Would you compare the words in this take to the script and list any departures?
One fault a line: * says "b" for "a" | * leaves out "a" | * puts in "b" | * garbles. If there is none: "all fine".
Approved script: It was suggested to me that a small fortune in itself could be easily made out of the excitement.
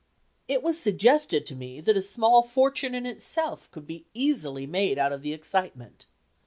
all fine